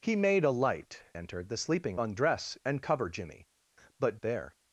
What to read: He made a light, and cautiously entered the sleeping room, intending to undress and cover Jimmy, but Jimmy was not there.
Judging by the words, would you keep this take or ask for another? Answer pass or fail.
fail